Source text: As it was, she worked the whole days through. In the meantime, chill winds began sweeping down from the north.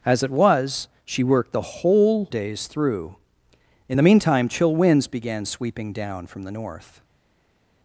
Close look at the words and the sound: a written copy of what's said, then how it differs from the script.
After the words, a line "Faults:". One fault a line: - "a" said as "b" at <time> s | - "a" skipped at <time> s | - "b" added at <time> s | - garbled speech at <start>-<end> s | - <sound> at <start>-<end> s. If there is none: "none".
As it was, she worked the whole days through. In the meantime, chill winds began sweeping down from the north.
Faults:
none